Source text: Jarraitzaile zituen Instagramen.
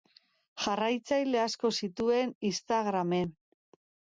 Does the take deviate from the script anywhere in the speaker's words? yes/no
yes